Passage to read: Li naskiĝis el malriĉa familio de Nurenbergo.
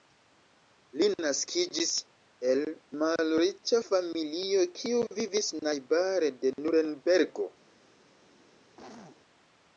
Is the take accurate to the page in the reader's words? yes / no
no